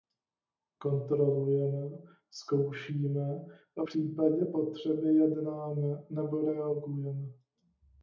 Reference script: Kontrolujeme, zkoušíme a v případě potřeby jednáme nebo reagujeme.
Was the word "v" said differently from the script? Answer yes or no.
yes